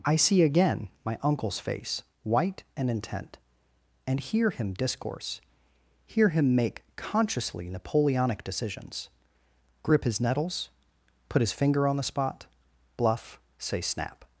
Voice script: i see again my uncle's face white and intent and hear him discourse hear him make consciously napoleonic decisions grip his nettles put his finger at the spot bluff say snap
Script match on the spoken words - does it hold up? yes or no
no